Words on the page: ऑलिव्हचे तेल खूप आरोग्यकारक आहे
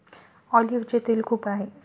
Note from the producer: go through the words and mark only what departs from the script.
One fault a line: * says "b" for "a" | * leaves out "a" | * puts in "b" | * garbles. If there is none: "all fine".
* leaves out "आरोग्यकारक"